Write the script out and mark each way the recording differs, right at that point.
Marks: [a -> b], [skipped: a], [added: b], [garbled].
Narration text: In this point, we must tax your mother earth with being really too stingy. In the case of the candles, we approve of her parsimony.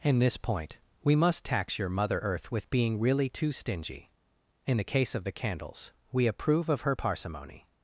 In this point, we must tax your mother earth with being really too stingy. In the case of the candles, we approve of her parsimony.